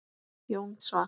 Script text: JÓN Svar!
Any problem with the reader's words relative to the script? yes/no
no